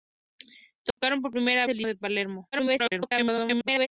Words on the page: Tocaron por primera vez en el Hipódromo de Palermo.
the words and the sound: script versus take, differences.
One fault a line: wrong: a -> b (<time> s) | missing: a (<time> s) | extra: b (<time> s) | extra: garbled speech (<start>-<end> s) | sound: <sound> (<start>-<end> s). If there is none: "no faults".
sound: dropout (0.9-1.0 s)
missing: vez (1.7 s)
missing: Hipódromo (1.8 s)
extra: garbled speech (2.5-3.9 s)